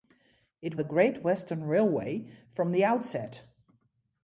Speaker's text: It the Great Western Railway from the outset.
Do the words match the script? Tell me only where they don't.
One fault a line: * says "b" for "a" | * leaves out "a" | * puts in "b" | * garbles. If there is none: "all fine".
all fine